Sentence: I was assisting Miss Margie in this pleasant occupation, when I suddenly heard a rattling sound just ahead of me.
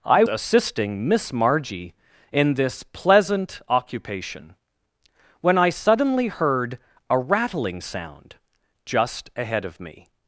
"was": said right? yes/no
no